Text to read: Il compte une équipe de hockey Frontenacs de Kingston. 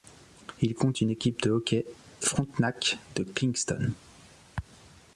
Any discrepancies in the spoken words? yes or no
no